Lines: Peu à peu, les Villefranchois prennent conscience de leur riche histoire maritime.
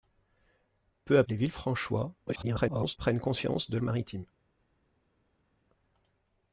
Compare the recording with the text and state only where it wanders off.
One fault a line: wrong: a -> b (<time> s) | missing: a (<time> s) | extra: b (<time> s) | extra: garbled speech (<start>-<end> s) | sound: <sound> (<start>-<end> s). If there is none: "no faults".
missing: peu (1.2 s)
extra: garbled speech (2.3-3.0 s)
missing: leur riche histoire (3.8 s)